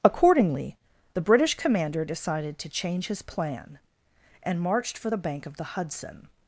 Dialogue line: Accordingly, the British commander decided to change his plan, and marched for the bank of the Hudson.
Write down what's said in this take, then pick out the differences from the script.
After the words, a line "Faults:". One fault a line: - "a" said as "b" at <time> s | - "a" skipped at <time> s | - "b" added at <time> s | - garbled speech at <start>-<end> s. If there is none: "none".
Accordingly, the British commander decided to change his plan, and marched for the bank of the Hudson.
Faults:
none